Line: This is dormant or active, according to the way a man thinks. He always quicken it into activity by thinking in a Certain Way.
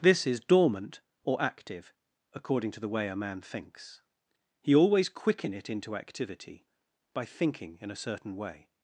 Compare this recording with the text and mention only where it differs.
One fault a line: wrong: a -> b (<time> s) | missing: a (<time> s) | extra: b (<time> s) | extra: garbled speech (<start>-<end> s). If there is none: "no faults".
no faults